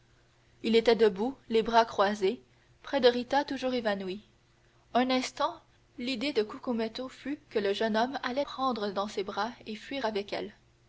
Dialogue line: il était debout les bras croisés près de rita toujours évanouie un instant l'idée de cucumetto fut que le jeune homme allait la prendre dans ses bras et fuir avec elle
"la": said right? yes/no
no